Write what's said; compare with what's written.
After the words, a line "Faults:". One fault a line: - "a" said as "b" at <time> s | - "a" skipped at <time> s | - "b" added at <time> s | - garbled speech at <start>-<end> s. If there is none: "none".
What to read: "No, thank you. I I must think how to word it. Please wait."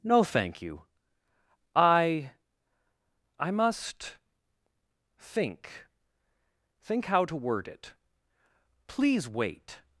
"No, thank you. I I must think think how to word it. Please wait."
Faults:
- "think" added at 6.8 s